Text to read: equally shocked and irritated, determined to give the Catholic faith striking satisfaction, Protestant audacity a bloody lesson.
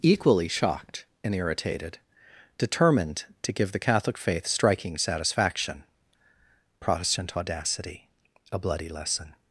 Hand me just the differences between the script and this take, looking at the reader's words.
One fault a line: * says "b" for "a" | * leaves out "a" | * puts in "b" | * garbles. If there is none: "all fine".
all fine